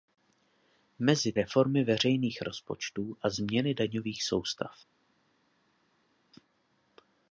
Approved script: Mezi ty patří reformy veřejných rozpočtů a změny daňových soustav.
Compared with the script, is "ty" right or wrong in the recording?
wrong